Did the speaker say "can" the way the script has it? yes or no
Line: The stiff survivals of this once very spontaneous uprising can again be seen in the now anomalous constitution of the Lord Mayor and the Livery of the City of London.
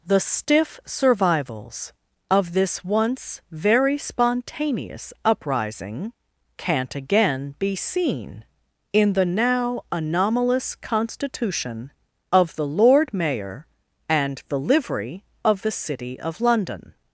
no